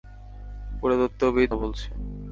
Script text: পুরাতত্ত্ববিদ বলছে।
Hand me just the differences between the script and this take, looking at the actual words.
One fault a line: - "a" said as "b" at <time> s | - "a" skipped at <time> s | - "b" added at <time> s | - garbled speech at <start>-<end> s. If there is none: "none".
none